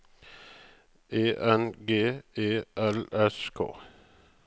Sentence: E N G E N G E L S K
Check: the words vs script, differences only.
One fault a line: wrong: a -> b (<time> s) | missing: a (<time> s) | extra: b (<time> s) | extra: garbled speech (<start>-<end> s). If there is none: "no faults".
missing: N G E (2.6 s)